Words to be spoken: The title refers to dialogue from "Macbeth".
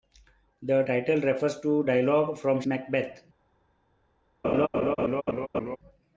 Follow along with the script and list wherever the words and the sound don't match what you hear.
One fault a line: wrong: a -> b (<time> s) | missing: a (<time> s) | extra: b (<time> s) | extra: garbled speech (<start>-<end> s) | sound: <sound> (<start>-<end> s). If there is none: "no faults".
sound: laugh (4.4-5.8 s)